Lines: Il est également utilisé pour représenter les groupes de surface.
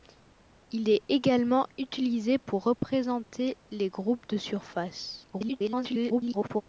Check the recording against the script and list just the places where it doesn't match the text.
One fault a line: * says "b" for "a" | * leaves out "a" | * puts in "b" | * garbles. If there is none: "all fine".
* garbles